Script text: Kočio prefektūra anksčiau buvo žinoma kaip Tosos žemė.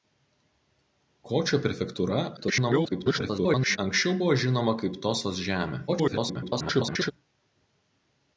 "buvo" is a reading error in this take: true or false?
false